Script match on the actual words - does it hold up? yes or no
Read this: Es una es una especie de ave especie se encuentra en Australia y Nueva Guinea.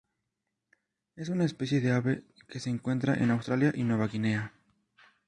no